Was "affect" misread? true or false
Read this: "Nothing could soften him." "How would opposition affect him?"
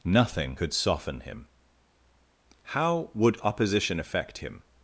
false